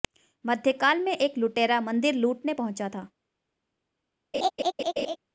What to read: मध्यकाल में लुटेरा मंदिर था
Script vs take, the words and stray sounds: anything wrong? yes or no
yes